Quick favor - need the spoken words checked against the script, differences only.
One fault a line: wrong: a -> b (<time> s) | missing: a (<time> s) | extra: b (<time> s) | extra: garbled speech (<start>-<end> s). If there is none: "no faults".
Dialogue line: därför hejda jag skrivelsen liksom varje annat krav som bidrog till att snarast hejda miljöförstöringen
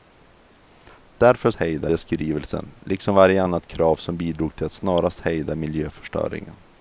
no faults